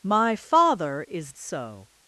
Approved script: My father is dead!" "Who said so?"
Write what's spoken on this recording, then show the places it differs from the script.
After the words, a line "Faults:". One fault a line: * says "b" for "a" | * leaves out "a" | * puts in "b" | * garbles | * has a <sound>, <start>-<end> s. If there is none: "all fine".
My father is so?"
Faults:
* leaves out "dead Who said"